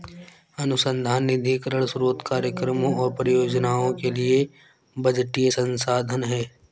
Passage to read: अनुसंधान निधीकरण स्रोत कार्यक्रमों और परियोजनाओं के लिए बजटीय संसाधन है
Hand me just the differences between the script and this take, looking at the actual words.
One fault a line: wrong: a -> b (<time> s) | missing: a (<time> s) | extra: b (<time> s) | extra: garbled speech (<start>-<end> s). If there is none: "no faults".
no faults